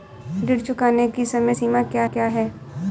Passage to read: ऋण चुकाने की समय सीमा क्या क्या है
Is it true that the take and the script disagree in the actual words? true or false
false